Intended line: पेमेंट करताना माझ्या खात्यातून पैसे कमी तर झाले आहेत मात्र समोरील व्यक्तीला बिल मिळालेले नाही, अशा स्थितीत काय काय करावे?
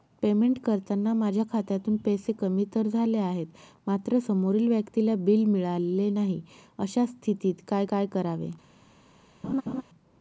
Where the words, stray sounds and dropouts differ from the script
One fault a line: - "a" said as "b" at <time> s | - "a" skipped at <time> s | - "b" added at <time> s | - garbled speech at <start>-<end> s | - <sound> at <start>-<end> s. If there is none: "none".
- laugh at 9.4-9.8 s